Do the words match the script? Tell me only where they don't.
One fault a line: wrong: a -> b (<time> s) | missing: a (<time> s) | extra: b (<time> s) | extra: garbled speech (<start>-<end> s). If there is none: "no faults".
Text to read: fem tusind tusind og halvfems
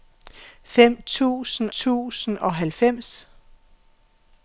no faults